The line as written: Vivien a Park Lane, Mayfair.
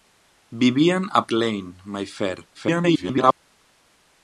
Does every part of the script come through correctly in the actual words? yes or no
no